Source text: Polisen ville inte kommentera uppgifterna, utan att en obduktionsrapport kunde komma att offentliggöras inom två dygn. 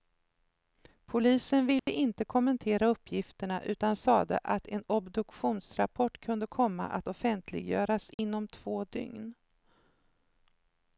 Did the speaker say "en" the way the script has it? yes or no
yes